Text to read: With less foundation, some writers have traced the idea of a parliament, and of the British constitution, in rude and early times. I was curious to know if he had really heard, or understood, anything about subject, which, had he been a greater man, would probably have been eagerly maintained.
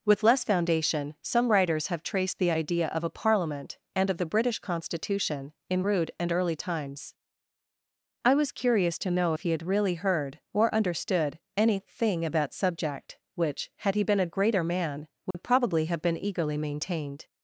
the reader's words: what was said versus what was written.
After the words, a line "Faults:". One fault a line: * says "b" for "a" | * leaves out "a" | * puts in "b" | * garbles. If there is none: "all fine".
With less foundation, some writers have traced the idea of a parliament, and of the British constitution, in rude and early times. I was curious to know if he had really heard, or understood, anything about subject, which, had he been a greater man, would probably have been eagerly maintained.
Faults:
all fine